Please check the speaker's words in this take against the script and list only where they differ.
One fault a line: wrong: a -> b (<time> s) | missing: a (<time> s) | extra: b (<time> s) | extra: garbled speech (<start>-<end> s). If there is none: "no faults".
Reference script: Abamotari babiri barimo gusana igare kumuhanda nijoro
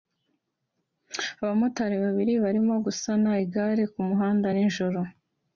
no faults